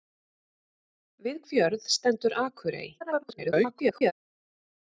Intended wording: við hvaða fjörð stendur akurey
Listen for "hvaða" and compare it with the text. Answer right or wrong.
wrong